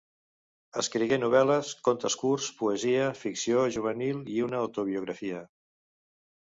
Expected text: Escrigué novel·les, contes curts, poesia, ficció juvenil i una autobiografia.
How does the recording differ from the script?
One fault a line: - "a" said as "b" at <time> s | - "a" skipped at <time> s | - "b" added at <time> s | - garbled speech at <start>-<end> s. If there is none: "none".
none